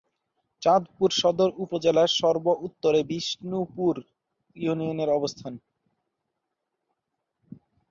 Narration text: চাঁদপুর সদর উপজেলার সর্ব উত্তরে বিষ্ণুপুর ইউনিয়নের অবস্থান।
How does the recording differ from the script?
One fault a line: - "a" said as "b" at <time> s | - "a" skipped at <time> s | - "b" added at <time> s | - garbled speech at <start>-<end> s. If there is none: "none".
none